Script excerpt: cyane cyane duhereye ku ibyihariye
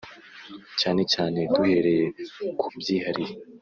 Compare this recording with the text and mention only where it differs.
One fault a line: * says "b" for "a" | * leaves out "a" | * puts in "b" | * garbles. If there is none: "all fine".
all fine